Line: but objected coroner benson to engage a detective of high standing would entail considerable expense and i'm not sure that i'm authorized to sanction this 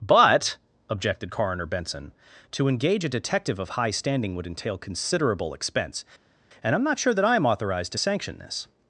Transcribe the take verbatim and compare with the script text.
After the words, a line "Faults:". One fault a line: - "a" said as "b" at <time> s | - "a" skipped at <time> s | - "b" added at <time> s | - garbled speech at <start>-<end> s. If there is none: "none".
but objected coroner benson to engage a detective of high standing would entail considerable expense and i'm not sure that i'm authorized to sanction this
Faults:
none